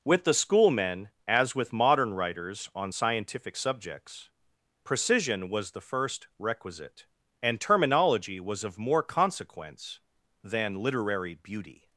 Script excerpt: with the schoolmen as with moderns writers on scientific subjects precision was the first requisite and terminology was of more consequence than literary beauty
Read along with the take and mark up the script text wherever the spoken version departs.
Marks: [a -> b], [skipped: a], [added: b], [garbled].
with the schoolmen as with [moderns -> modern] writers on scientific subjects precision was the first requisite and terminology was of more consequence than literary beauty